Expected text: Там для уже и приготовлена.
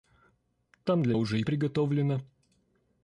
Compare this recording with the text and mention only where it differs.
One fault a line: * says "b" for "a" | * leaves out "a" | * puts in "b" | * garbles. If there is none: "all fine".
all fine